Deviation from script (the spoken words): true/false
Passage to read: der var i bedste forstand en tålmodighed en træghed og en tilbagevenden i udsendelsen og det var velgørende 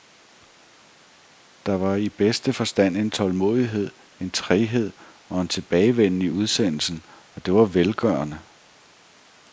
false